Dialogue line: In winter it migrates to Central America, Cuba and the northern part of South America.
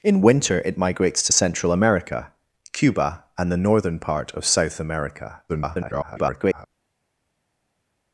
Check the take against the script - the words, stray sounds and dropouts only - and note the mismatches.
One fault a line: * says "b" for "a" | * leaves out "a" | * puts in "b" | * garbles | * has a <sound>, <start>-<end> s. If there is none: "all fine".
* garbles